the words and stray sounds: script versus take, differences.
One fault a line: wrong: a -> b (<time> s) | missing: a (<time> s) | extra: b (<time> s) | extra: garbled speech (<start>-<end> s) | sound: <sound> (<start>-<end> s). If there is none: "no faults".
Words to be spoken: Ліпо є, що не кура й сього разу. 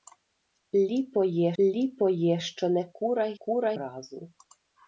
extra: ліпо є (1.6 s)
wrong: сього -> кура (3.4 s)